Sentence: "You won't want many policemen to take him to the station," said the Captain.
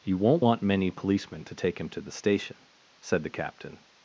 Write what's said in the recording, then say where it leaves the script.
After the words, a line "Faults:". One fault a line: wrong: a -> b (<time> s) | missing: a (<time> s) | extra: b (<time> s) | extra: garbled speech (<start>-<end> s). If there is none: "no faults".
"You won't want many policemen to take him to the station," said the Captain.
Faults:
no faults